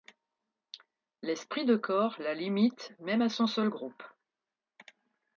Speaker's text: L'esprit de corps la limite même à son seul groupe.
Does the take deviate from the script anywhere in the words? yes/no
no